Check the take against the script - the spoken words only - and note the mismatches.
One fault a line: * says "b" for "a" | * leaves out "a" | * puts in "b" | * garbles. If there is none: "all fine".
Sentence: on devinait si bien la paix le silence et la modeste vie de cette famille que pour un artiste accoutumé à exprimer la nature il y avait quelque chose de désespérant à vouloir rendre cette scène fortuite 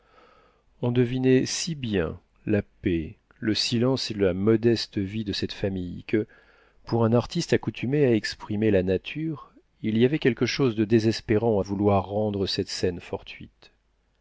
all fine